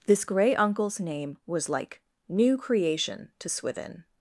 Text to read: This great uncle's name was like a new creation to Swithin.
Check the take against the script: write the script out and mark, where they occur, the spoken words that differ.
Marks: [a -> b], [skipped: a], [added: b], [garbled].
This [great -> grey] uncle's name was like [skipped: a] new creation to Swithin.